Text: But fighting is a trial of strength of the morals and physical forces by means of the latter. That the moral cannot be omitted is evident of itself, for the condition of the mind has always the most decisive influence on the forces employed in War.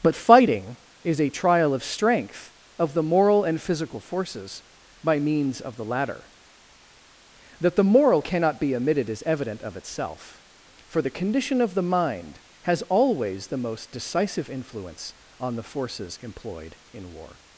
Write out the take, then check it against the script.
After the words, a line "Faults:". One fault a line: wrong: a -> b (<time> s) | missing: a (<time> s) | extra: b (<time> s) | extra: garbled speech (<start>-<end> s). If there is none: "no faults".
But fighting is a trial of strength of the moral and physical forces by means of the latter. That the moral cannot be omitted is evident of itself, for the condition of the mind has always the most decisive influence on the forces employed in War.
Faults:
wrong: morals -> moral (3.0 s)